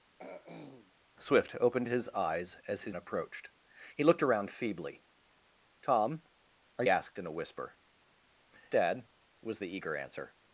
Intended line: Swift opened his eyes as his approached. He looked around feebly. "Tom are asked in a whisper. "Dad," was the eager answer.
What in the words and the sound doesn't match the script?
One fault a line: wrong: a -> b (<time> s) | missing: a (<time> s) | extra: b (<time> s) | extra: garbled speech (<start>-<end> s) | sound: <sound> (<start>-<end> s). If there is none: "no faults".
sound: throat clearing (0.2-0.9 s)